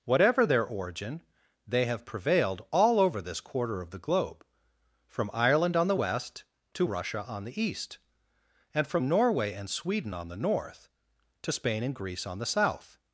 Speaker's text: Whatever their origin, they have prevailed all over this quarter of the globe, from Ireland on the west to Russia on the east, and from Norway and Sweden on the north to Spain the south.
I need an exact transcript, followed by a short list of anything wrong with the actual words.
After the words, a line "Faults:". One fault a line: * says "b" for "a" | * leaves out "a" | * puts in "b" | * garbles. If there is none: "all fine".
Whatever their origin, they have prevailed all over this quarter of the globe, from Ireland on the west to Russia on the east, and from Norway and Sweden on the north to Spain and Greece on the south.
Faults:
* puts in "and Greece on"